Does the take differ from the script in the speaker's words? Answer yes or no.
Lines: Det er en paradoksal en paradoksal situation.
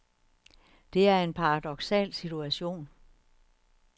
yes